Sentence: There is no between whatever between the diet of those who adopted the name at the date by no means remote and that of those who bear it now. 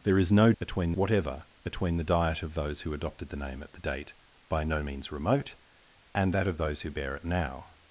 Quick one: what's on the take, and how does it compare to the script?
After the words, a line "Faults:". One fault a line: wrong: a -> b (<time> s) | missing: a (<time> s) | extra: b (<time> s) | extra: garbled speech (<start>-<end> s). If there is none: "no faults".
There is no between whatever between the diet of those who adopted the name at the date by no means remote and that of those who bear it now.
Faults:
no faults